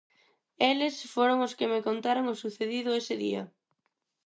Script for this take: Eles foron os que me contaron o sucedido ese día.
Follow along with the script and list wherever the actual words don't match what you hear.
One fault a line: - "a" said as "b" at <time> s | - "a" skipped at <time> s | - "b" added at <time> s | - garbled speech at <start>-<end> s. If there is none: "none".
none